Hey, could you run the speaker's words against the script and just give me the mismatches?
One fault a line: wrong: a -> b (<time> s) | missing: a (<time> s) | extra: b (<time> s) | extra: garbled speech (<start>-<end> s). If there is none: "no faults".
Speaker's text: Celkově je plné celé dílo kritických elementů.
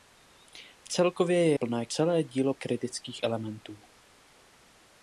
no faults